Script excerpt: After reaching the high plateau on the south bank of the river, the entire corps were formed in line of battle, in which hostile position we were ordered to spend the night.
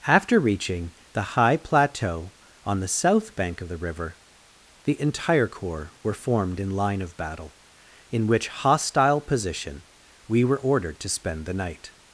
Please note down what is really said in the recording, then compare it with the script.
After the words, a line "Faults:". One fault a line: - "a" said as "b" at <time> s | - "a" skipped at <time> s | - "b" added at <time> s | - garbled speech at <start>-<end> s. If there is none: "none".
After reaching the high plateau on the south bank of the river, the entire corps were formed in line of battle, in which hostile position we were ordered to spend the night.
Faults:
none